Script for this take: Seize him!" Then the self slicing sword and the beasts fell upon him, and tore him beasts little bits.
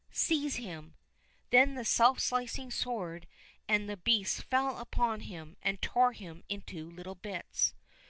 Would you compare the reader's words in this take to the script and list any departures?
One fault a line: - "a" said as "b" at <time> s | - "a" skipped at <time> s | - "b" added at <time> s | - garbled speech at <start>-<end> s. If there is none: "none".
- "beasts" said as "into" at 6.5 s